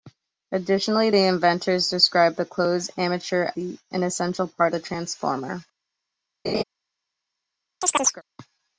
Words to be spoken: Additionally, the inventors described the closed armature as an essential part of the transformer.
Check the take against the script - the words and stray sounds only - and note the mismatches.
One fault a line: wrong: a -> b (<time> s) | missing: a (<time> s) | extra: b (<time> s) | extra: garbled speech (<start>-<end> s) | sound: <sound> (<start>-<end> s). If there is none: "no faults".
missing: as (3.5 s)
missing: of (4.7 s)
sound: laugh (6.4-6.6 s)
sound: chirp (7.8-8.2 s)